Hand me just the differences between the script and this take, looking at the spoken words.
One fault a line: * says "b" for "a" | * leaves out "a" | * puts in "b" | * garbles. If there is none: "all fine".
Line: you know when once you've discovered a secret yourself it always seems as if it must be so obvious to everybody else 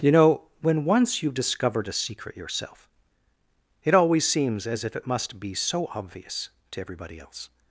all fine